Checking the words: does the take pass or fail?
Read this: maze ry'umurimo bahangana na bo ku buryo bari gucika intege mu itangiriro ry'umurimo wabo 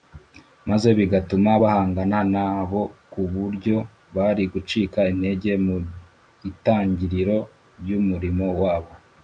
fail